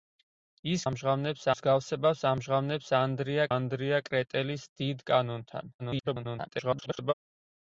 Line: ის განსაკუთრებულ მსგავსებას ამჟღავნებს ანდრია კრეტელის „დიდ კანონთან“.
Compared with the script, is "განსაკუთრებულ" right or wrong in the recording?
wrong